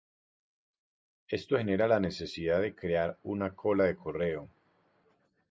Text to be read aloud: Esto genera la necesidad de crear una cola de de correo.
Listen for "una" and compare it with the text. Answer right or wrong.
right